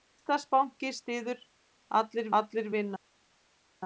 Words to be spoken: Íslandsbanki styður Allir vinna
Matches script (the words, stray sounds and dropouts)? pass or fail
fail